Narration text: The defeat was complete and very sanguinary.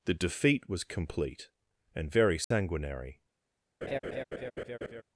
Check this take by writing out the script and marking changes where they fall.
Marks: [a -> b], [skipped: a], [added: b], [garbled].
The defeat was complete and very sanguinary.